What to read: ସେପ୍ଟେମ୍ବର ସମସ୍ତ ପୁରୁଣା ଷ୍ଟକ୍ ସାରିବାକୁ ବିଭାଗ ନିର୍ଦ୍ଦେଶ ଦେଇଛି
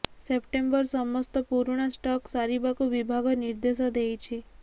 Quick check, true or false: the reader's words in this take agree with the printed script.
true